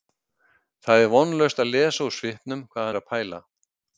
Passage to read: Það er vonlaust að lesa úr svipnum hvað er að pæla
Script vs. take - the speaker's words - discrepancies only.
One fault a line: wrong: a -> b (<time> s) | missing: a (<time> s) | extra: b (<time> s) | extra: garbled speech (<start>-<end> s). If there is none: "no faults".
no faults